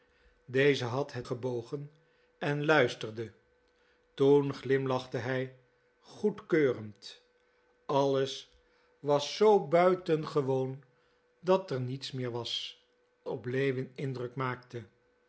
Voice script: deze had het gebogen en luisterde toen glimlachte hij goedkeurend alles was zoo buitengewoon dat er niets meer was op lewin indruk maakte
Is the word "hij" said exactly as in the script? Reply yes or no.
yes